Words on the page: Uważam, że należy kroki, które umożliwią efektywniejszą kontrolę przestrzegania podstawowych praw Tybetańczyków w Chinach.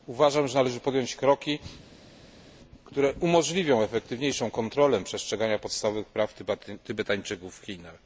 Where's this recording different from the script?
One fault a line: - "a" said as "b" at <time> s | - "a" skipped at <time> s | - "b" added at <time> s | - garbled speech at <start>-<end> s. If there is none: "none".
- "podjąć" added at 0.8 s